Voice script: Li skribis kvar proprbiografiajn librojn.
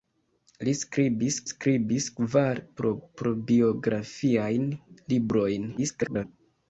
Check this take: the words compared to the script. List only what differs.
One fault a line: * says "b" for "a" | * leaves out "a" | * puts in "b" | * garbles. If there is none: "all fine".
* puts in "skribis"
* garbles